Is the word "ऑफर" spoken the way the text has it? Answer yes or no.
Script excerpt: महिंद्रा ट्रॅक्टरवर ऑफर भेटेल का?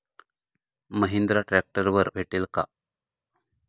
no